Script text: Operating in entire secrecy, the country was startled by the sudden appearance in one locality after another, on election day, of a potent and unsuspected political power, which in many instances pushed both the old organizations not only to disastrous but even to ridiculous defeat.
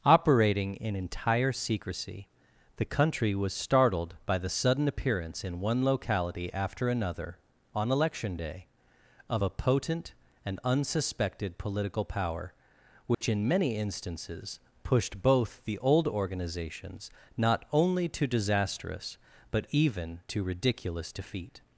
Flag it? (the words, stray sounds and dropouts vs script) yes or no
yes